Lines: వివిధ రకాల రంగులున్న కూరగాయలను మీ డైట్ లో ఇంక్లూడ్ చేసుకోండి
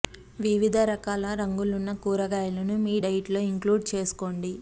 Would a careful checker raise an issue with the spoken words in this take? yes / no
no